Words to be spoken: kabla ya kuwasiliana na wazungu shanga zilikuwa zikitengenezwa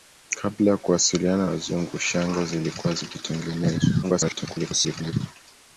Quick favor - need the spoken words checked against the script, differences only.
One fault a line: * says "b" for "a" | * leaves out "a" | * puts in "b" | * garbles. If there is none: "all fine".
* leaves out "na"
* garbles